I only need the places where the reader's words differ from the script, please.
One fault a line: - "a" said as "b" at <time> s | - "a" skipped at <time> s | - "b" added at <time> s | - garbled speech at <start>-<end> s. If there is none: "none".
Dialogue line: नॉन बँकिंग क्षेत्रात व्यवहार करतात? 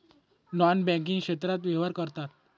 none